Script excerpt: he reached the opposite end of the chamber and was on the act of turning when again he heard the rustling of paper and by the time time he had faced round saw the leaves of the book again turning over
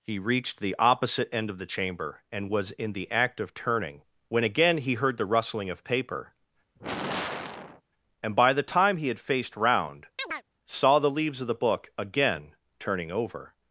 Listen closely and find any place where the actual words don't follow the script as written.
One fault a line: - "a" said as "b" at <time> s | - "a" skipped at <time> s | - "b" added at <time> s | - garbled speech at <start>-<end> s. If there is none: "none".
- "on" said as "in" at 2.7 s
- "time" skipped at 9.0 s